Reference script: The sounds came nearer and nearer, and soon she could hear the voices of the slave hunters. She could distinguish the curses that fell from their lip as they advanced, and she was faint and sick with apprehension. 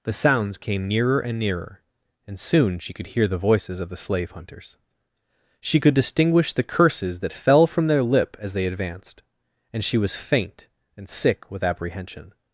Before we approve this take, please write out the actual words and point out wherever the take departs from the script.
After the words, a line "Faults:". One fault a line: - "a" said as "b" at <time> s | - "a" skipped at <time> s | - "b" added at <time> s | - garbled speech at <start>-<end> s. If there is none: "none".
The sounds came nearer and nearer, and soon she could hear the voices of the slave hunters. She could distinguish the curses that fell from their lip as they advanced, and she was faint and sick with apprehension.
Faults:
none